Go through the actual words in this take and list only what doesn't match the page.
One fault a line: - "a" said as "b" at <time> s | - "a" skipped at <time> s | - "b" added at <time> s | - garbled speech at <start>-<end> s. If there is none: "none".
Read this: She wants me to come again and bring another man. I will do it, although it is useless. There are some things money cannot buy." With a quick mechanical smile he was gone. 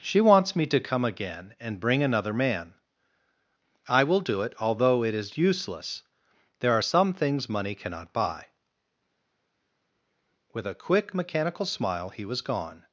none